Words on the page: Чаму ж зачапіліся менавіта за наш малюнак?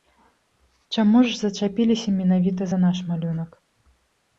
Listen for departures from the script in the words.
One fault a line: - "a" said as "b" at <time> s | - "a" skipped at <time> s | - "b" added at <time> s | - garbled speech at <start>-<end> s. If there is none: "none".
none